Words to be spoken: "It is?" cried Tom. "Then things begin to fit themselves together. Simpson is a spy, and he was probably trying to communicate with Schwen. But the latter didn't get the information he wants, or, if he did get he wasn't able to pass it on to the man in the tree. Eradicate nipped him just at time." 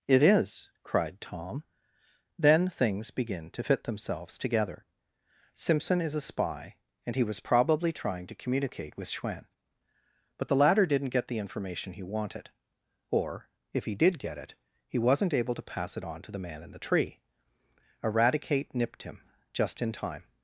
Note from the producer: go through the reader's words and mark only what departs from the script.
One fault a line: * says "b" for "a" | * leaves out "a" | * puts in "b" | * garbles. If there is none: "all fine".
* says "wanted" for "wants"
* puts in "it"
* says "in" for "at"